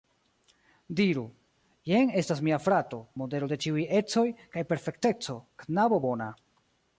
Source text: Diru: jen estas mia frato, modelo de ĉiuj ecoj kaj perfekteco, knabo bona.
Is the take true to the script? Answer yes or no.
yes